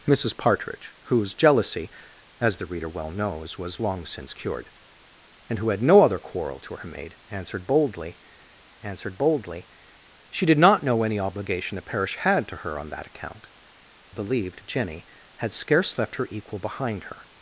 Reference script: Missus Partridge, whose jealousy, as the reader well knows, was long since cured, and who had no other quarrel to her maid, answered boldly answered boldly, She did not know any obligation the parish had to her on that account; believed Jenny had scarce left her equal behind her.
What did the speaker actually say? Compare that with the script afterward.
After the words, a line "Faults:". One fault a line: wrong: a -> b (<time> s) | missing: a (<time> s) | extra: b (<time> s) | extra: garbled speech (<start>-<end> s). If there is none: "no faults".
Missus Partridge, whose jealousy, as the reader well knows, was long since cured, and who had no other quarrel to her maid, answered boldly answered boldly, She did not know any obligation the parish had to her on that account; believed Jenny had scarce left her equal behind her.
Faults:
no faults